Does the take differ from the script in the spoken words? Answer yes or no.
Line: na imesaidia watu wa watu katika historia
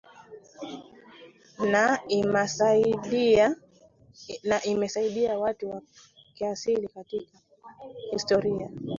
yes